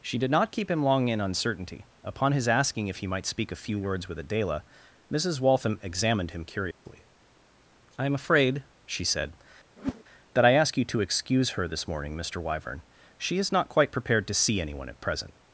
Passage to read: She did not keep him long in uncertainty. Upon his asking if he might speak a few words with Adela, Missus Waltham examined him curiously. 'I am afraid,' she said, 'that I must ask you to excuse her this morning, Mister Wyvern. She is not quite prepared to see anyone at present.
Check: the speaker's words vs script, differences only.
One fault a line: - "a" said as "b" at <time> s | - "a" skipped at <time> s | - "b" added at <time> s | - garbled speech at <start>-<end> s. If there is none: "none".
- "must" skipped at 10.5 s